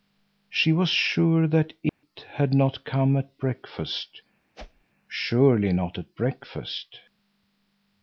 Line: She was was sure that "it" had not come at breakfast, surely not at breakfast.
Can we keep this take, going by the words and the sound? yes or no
no